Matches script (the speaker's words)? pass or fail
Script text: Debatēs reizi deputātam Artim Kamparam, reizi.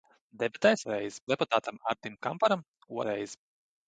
pass